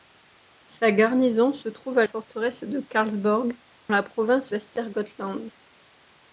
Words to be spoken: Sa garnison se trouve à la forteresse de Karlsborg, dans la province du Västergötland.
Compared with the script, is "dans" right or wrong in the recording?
wrong